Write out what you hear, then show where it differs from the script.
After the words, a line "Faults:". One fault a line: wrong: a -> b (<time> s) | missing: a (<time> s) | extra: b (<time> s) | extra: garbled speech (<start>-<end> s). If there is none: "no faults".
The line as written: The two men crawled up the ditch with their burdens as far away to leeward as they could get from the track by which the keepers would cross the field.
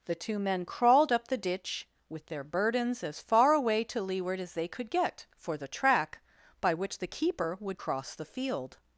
The two men crawled up the ditch with their burdens as far away to leeward as they could get for the track by which the keeper would cross the field.
Faults:
wrong: from -> for (5.3 s)
wrong: keepers -> keeper (7.1 s)